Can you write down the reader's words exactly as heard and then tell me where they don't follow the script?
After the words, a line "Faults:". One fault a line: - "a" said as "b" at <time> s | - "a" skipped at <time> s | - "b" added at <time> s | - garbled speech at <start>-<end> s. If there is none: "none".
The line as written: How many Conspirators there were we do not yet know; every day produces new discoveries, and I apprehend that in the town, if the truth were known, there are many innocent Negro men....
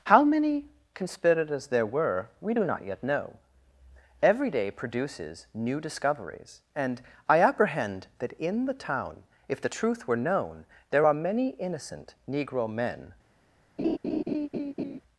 How many Conspirators there were we do not yet know; every day produces new discoveries, and I apprehend that in the town, if the truth were known, there are many innocent Negro men....
Faults:
none